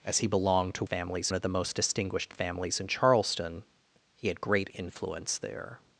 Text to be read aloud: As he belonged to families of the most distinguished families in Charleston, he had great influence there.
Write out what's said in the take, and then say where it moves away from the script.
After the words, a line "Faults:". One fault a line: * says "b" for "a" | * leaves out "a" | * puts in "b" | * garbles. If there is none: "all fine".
As he belonged to families of the most distinguished families in Charleston, he had great influence there.
Faults:
all fine